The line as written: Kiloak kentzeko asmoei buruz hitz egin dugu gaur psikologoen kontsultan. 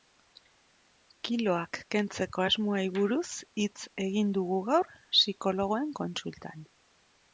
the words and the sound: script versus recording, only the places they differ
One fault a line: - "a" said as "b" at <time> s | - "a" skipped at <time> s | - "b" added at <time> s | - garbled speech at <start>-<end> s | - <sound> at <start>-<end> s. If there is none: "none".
none